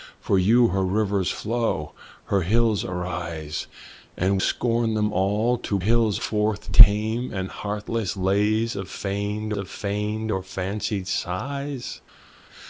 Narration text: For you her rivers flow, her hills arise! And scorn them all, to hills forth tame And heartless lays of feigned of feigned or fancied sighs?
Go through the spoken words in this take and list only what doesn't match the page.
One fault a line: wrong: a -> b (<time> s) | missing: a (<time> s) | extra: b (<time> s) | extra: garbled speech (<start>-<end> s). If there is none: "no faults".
no faults